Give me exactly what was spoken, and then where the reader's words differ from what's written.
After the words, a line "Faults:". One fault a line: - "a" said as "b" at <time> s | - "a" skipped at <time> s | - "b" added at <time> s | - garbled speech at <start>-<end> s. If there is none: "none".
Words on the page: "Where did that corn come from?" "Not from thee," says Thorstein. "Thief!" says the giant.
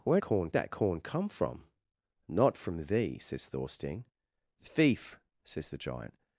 "Where corn that corn come from?" "Not from thee," says Thorstein. "Thief!" says the giant.
Faults:
- "did" said as "corn" at 0.2 s